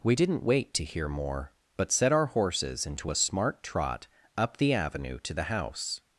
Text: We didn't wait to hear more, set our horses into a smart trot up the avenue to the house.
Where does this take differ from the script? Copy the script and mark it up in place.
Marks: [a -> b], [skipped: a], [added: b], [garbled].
We didn't wait to hear more, [added: but] set our horses into a smart trot up the avenue to the house.